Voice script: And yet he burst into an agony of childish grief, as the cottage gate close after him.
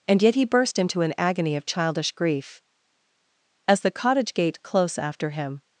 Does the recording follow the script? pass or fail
pass